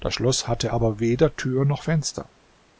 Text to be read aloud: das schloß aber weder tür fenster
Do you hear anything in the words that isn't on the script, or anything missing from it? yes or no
yes